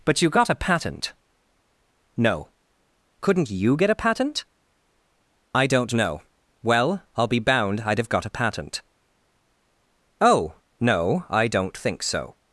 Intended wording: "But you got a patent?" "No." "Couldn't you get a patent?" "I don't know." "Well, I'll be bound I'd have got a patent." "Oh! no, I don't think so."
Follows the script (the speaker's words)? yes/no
yes